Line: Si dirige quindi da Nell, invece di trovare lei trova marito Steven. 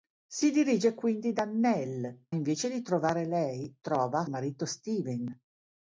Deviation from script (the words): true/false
false